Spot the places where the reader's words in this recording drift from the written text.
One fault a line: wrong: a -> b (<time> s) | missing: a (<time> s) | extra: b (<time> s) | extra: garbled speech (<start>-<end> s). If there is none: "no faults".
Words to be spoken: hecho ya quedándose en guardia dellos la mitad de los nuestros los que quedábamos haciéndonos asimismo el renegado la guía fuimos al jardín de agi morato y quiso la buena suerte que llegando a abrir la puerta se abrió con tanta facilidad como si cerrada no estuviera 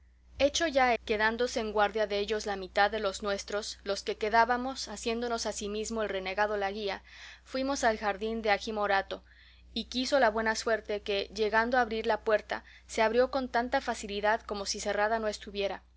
no faults